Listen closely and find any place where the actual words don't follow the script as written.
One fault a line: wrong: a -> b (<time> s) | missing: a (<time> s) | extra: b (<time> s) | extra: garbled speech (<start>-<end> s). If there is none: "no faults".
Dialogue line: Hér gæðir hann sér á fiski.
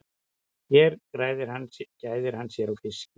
no faults